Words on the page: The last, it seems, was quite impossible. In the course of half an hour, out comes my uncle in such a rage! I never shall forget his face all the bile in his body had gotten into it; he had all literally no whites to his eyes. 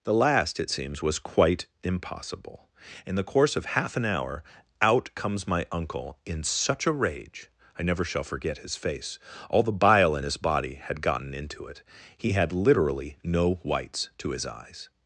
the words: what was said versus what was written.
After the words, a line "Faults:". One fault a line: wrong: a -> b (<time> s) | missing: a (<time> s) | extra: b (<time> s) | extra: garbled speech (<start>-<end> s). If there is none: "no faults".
The last, it seems, was quite impossible. In the course of half an hour, out comes my uncle in such a rage! I never shall forget his face all the bile in his body had gotten into it; he had literally no whites to his eyes.
Faults:
missing: all (12.5 s)